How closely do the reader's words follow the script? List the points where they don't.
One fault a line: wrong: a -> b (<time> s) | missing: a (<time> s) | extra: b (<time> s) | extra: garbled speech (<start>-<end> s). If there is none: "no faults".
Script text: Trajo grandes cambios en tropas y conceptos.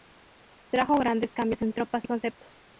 no faults